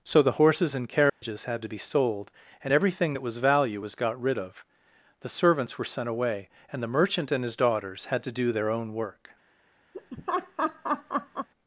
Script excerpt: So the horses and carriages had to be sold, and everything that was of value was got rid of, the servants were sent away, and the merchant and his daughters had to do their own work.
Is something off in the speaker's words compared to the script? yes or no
yes